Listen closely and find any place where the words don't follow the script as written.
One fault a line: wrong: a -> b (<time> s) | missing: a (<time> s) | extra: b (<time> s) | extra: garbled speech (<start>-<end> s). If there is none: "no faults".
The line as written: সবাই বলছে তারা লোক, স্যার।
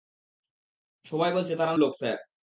no faults